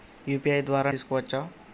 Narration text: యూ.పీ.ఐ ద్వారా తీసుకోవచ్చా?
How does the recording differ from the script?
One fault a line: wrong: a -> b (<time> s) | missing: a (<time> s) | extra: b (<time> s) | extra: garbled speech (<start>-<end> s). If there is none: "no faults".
no faults